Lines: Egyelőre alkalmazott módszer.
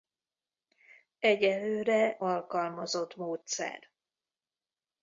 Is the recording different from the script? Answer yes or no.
no